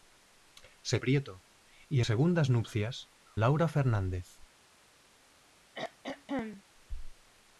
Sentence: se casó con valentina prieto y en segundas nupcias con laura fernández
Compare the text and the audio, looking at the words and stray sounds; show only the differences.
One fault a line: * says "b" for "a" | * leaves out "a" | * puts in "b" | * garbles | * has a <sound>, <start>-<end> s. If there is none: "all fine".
* leaves out "casó con valentina"
* leaves out "en"
* leaves out "con"
* has a throat clearing, 5.7-6.6 s